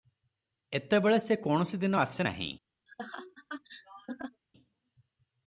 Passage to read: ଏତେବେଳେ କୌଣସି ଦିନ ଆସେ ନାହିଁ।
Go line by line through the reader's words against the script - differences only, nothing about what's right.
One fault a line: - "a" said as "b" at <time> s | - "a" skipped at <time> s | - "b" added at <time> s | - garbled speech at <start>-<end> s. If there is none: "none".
- "ସେ" added at 1.2 s